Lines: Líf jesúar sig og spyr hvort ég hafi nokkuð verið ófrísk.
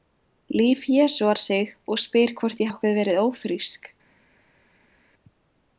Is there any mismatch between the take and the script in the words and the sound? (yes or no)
yes